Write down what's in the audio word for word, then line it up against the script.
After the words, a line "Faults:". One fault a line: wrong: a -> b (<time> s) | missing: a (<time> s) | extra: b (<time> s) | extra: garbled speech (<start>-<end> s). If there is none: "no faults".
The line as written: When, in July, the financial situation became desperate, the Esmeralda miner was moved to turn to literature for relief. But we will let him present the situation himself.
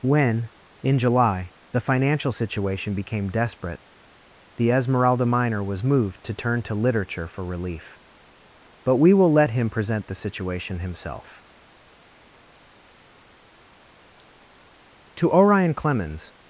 When, in July, the financial situation became desperate, the Esmeralda miner was moved to turn to literature for relief. But we will let him present the situation himself. To Orion Clemens
Faults:
extra: To Orion Clemens (15.2 s)